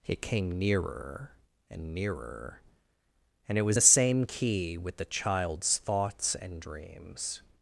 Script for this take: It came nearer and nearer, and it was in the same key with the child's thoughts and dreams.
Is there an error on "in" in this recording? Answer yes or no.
yes